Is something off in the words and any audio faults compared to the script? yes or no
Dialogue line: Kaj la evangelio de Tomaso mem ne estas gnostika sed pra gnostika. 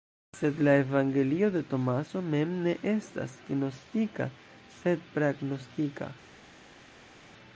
yes